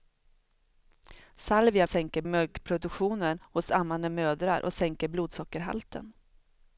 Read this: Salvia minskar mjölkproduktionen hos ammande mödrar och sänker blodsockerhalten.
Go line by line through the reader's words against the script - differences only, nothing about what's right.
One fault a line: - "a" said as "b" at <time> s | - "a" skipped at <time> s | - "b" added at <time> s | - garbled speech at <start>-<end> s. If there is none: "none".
- "minskar" said as "sänker" at 1.9 s